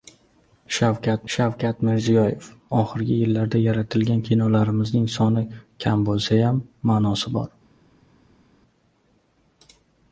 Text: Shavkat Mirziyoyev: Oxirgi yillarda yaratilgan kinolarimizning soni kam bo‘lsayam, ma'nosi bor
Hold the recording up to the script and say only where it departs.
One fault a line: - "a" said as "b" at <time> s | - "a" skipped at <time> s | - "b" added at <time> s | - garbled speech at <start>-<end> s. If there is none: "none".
- "shavkat" added at 1.3 s